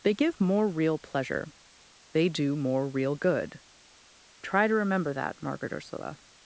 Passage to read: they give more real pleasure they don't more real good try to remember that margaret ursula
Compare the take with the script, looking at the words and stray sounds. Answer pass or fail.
fail